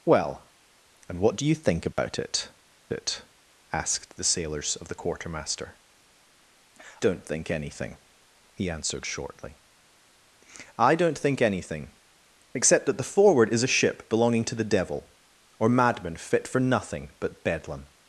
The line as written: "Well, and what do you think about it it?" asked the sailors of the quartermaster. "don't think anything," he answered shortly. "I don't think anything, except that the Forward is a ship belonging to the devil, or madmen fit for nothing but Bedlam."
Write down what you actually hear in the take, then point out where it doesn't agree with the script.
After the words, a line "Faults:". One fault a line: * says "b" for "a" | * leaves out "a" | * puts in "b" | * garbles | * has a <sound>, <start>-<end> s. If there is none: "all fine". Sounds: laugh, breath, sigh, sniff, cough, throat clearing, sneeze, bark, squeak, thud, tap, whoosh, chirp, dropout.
"Well, and what do you think about it it?" asked the sailors of the quartermaster. "don't think anything," he answered shortly. "I don't think anything, except that the Forward is a ship belonging to the devil, or madmen fit for nothing but Bedlam."
Faults:
* has a dropout, 1.9-2.0 s